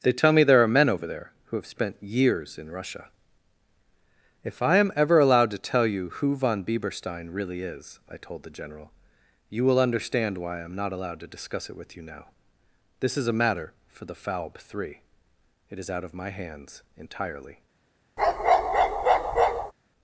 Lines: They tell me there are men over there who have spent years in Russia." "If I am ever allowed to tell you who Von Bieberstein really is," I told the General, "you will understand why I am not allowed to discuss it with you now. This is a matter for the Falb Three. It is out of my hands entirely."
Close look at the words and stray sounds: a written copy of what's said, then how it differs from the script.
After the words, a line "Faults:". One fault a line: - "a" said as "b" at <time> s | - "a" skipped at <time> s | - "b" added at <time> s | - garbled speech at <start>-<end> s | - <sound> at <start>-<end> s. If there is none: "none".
They tell me there are men over there who have spent years in Russia." "If I am ever allowed to tell you who Von Bieberstein really is," I told the General, "you will understand why I am not allowed to discuss it with you now. This is a matter for the Falb Three. It is out of my hands entirely."
Faults:
- bark at 18.2-19.7 s